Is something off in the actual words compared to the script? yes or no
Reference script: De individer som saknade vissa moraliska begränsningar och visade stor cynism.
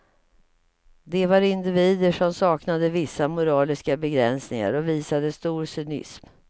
yes